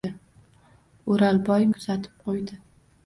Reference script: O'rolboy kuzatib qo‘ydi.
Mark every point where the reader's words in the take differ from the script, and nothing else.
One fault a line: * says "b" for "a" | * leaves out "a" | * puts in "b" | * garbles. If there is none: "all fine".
all fine